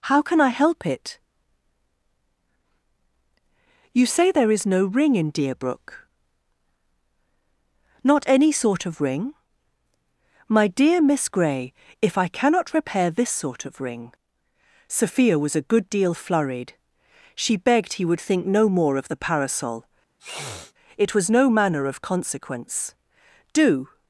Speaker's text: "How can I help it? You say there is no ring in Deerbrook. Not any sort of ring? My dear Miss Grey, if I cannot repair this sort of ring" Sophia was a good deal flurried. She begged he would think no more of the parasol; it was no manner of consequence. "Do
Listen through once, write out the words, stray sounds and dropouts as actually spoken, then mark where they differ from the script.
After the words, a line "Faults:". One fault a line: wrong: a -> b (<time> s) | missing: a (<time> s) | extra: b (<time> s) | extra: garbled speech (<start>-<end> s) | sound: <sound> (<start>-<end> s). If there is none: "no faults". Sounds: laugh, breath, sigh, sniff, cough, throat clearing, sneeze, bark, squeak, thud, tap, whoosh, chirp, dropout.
"How can I help it? You say there is no ring in Deerbrook. Not any sort of ring? My dear Miss Grey, if I cannot repair this sort of ring" Sophia was a good deal flurried. She begged he would think no more of the parasol; it was no manner of consequence. "Do
Faults:
sound: sniff (20.2-20.7 s)